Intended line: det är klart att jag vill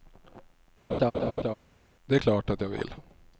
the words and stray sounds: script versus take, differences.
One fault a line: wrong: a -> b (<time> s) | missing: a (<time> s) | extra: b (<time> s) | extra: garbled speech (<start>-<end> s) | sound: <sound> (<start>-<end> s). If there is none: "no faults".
sound: laugh (0.9-1.5 s)